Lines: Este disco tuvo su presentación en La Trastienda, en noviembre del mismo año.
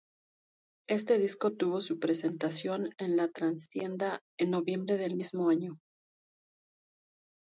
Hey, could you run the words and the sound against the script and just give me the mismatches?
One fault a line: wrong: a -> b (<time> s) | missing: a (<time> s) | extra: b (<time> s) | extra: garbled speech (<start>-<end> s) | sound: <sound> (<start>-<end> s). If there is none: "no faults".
no faults